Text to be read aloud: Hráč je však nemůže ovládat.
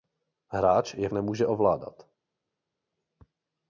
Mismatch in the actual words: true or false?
true